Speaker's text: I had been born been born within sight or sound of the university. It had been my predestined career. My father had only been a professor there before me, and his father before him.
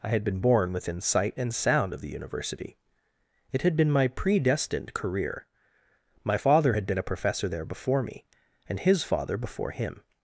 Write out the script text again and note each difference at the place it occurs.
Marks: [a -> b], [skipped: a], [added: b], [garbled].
I had been born [skipped: been born] within sight [or -> and] sound of the university. It had been my predestined career. My father had [skipped: only] been a professor there before me, and his father before him.